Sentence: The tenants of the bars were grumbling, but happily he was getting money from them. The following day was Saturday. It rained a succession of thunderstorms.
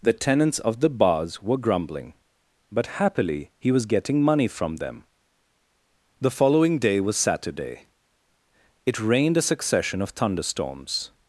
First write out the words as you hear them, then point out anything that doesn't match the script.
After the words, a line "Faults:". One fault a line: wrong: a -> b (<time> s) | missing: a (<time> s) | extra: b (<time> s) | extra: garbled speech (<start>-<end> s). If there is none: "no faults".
The tenants of the bars were grumbling, but happily he was getting money from them. The following day was Saturday. It rained a succession of thunderstorms.
Faults:
no faults